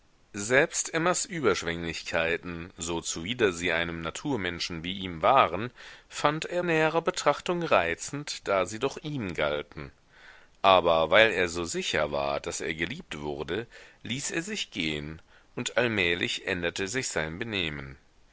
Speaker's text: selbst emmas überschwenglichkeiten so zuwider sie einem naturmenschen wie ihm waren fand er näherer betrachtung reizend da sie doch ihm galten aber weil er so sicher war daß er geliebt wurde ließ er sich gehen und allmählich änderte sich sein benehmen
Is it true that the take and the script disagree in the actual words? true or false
false